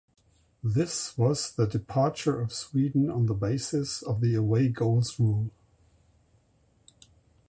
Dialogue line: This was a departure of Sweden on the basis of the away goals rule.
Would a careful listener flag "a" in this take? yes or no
yes